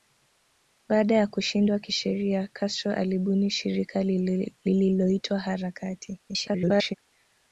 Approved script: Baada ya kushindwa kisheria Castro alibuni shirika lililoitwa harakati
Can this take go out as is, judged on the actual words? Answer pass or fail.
fail